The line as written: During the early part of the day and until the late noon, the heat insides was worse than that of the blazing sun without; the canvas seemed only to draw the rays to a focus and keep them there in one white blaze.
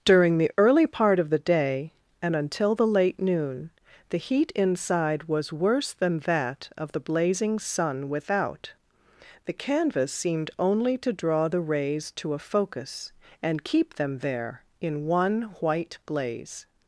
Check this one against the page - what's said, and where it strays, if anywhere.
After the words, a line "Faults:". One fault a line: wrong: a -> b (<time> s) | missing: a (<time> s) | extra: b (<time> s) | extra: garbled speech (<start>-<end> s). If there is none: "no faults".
During the early part of the day and until the late noon, the heat inside was worse than that of the blazing sun without; the canvas seemed only to draw the rays to a focus and keep them there in one white blaze.
Faults:
wrong: insides -> inside (4.5 s)